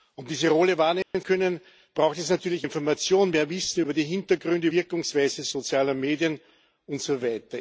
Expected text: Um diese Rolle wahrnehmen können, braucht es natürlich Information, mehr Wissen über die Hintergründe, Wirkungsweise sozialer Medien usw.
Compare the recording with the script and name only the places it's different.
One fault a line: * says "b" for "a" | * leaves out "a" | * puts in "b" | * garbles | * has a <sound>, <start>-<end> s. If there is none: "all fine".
* has a dropout, 1.0-1.1 s